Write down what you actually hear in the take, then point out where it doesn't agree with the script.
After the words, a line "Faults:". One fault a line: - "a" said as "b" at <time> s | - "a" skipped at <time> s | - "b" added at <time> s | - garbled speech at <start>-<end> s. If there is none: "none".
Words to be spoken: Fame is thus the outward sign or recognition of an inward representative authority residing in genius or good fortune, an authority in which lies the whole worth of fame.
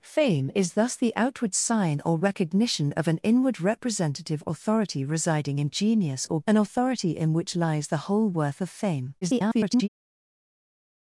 Fame is thus the outward sign or recognition of an inward representative authority residing in genius or an authority in which lies the whole worth of fame. [garbled]
Faults:
- "good fortune" skipped at 6.4 s
- garbled speech at 9.2-9.9 s